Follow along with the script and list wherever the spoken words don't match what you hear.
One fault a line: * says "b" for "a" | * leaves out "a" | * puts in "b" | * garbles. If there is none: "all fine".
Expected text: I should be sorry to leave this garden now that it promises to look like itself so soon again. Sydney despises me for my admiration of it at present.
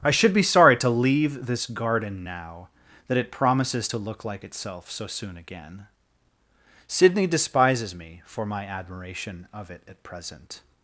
all fine